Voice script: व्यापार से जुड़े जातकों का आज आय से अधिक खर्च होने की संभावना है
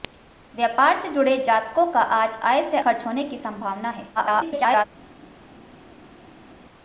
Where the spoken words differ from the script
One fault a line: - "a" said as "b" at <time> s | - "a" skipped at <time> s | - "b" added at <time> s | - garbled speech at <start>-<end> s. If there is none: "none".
- "अधिक" skipped at 2.8 s
- garbled speech at 4.2-4.9 s